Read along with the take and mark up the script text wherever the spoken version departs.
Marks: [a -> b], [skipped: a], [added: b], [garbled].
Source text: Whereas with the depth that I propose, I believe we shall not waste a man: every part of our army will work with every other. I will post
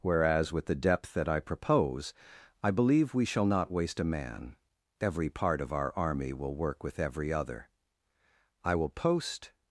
Whereas with the depth that I propose, I believe we shall not waste a man: every part of our army will work with every other. I will post